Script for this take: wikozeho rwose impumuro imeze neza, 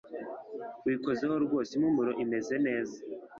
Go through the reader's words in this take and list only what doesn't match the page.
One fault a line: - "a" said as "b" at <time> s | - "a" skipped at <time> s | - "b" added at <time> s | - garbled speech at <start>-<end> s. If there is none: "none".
none